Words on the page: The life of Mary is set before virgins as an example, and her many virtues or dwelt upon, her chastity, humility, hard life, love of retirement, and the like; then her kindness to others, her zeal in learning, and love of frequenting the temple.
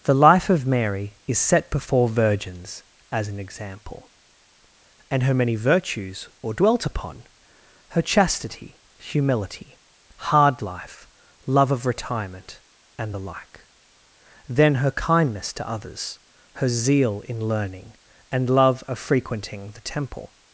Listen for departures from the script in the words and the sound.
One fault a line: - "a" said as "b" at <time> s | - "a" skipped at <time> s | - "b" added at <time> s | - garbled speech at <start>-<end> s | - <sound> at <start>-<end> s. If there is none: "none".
none